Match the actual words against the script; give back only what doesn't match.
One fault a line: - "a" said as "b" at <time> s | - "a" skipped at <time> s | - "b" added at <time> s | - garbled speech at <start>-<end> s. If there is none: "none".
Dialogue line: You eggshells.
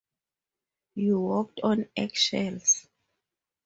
- "walked on" added at 1.2 s